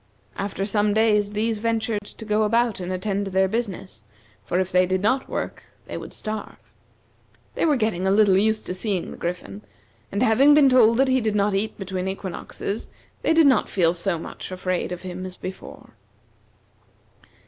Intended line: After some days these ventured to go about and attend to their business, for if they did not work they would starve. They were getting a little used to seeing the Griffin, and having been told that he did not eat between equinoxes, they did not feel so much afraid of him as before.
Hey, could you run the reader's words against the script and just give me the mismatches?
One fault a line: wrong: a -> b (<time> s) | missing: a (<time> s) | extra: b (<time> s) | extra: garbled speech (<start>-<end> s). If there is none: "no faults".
no faults